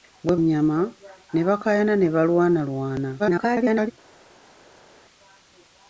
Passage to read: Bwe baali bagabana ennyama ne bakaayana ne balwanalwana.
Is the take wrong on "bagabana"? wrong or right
wrong